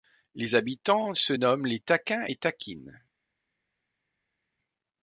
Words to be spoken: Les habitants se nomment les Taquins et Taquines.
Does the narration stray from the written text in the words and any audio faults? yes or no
no